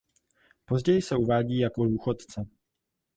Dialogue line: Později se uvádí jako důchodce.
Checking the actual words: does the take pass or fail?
pass